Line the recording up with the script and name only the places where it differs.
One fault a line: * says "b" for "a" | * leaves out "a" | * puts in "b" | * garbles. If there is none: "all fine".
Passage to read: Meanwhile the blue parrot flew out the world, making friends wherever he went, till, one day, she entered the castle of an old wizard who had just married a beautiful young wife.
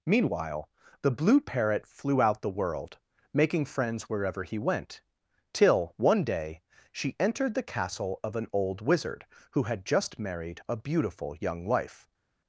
all fine